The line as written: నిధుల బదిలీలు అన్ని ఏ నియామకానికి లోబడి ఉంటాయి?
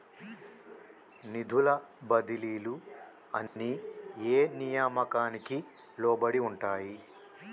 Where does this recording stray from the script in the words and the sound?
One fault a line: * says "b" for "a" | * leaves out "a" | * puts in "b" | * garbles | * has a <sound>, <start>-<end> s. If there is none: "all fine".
* has a dropout, 3.5-3.6 s